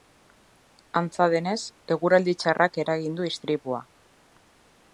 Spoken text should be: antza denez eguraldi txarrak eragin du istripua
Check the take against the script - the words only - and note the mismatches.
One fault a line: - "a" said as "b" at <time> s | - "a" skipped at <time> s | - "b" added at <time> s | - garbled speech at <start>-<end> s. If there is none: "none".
none